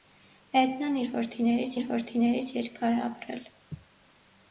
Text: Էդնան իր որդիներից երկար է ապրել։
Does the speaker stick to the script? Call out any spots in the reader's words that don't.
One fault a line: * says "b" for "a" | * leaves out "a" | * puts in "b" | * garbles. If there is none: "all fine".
* puts in "իր որդիներից"